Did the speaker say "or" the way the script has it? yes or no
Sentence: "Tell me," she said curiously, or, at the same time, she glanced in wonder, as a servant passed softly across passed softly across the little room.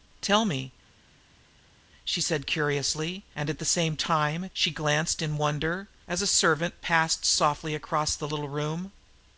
no